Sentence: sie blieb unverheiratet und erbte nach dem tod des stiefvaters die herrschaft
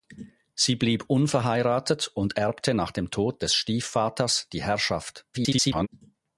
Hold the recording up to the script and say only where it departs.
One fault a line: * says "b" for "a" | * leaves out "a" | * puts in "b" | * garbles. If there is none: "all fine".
* garbles